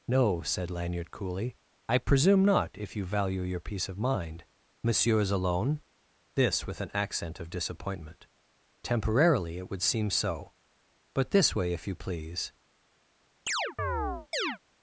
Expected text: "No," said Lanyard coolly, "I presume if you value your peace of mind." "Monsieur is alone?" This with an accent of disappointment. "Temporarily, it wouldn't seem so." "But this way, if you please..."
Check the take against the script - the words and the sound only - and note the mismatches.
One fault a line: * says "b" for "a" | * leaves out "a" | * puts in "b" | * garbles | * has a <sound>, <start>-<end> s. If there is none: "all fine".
* puts in "not"
* says "would" for "wouldn't"
* has a chirp, 13.5-14.6 s